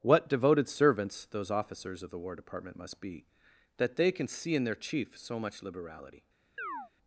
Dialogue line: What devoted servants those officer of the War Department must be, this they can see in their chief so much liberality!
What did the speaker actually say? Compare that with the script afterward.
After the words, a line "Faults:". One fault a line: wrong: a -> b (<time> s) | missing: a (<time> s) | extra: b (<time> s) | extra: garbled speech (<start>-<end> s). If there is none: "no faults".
What devoted servants those officers of the War Department must be, that they can see in their chief so much liberality!
Faults:
wrong: officer -> officers (1.5 s)
wrong: this -> that (3.8 s)